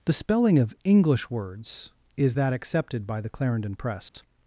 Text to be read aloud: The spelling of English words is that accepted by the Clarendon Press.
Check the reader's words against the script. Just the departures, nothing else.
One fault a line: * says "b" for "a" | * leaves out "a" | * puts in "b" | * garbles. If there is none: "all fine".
all fine